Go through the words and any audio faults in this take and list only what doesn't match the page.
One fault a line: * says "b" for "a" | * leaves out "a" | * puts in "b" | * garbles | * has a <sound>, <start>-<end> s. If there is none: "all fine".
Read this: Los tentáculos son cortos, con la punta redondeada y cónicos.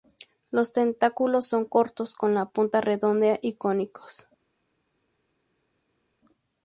all fine